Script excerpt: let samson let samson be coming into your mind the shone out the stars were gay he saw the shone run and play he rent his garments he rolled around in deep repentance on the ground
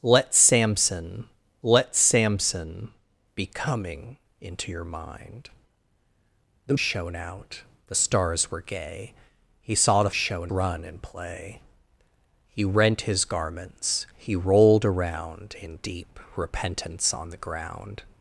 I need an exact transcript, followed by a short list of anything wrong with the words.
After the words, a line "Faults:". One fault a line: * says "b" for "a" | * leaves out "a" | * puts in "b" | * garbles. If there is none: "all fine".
let samson let samson be coming into your mind the shone out the stars were gay he saw the shone run and play he rent his garments he rolled around in deep repentance on the ground
Faults:
all fine